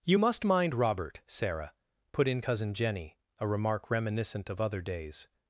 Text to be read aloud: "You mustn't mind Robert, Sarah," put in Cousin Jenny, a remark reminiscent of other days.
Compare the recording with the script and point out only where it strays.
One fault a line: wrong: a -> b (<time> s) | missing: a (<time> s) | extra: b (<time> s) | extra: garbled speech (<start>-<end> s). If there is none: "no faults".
wrong: mustn't -> must (0.2 s)